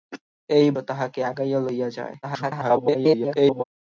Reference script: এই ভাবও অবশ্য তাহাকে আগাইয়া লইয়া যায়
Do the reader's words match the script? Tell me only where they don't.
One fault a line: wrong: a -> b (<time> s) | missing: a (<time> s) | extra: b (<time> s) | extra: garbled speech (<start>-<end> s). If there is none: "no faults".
missing: ভাবও অবশ্য (0.7 s)
extra: garbled speech (2.2-3.6 s)